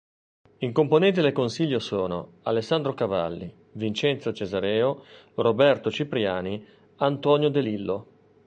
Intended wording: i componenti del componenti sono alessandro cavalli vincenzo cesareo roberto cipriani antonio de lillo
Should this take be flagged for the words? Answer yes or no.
yes